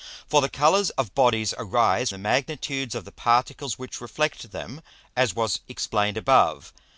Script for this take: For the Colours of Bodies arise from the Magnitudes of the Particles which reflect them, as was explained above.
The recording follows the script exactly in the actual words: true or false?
false